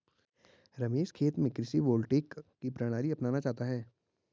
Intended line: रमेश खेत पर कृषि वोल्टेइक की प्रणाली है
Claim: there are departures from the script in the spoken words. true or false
true